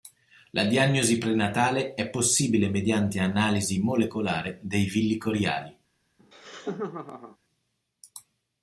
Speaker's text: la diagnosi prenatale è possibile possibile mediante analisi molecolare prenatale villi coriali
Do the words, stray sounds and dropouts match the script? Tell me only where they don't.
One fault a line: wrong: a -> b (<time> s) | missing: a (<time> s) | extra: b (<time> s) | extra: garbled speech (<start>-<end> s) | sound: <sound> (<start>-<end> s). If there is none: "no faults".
missing: possibile (2.7 s)
wrong: prenatale -> dei (4.6 s)
sound: laugh (6.2-7.4 s)